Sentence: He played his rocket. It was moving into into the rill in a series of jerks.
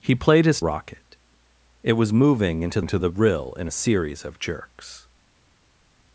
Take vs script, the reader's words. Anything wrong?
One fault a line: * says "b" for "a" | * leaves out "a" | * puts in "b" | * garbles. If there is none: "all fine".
all fine